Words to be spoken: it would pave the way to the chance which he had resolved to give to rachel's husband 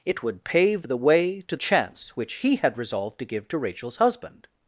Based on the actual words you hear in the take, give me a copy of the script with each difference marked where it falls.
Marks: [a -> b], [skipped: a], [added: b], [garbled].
it would pave the way to [skipped: the] chance which he had resolved to give to rachel's husband